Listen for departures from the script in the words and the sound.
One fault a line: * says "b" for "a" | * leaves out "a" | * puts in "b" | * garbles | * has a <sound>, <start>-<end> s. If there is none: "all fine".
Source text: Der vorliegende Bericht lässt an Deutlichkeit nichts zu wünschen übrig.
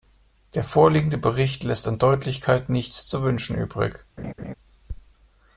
* has a laugh, 4.2-4.5 s